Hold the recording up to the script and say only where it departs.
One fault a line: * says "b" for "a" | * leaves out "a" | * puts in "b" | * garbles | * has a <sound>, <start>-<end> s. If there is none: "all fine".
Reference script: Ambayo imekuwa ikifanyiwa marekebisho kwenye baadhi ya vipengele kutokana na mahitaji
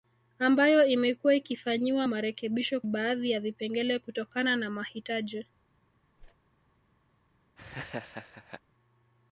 * leaves out "kwenye"
* has a whoosh, 6.2-6.4 s
* has a laugh, 7.6-8.6 s